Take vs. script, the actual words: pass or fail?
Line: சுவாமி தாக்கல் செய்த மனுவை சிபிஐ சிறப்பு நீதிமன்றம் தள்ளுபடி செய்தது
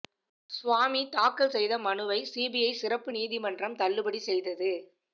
pass